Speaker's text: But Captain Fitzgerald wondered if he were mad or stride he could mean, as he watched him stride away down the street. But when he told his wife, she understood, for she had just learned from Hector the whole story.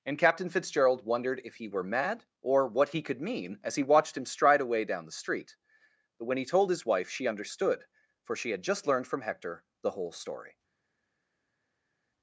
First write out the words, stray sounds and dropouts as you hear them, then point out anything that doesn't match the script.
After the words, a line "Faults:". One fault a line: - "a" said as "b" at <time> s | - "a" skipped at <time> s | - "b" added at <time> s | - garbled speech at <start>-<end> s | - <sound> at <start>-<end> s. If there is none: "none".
And Captain Fitzgerald wondered if he were mad or what he could mean, as he watched him stride away down the street. But when he told his wife, she understood, for she had just learned from Hector the whole story.
Faults:
- "But" said as "And" at 0.1 s
- "stride" said as "what" at 2.7 s